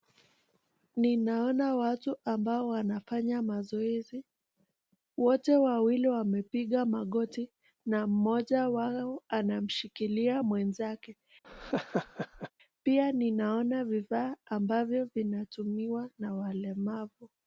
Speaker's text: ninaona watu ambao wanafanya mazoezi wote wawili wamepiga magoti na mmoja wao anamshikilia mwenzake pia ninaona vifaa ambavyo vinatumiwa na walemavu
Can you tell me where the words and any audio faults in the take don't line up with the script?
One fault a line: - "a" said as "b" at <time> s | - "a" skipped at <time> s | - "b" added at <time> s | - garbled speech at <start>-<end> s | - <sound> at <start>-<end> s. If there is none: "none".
- laugh at 11.4-12.5 s